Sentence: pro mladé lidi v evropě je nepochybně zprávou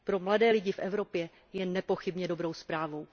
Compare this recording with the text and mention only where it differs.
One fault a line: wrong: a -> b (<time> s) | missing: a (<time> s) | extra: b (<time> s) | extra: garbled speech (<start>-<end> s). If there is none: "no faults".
extra: dobrou (2.3 s)